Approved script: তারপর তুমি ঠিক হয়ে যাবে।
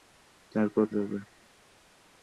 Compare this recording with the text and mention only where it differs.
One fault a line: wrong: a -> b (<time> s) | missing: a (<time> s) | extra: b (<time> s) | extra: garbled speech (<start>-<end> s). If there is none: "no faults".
missing: তুমি ঠিক হয়ে (0.8 s)